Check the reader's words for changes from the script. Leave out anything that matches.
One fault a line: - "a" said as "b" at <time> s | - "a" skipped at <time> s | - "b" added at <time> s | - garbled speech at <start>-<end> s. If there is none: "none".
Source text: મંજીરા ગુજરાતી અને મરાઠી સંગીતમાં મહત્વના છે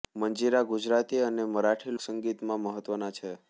none